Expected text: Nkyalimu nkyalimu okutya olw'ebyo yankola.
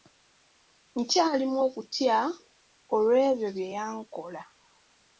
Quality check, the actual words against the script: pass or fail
fail